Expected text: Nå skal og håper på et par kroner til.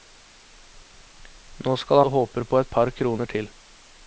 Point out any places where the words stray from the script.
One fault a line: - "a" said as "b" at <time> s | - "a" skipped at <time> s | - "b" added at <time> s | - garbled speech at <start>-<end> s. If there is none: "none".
none